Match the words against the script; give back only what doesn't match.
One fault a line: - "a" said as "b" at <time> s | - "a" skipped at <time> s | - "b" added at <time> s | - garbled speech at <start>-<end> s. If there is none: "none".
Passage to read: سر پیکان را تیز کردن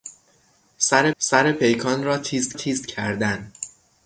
- "سر" added at 1.2 s
- "تیز" added at 2.5 s